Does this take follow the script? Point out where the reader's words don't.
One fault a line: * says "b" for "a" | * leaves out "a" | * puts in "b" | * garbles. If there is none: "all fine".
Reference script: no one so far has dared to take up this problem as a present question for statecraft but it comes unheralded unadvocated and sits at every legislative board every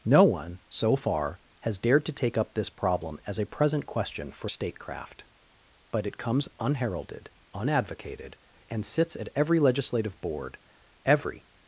all fine